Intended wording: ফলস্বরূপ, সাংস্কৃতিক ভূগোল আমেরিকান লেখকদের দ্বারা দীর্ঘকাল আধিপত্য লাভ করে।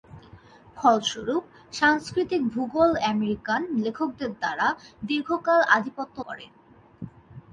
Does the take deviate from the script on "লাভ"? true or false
true